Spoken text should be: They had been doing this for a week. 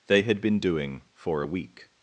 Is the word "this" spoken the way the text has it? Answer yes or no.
no